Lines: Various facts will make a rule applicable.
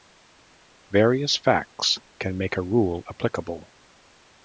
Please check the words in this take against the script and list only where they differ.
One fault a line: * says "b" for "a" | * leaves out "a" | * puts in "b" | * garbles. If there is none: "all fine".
* says "can" for "will"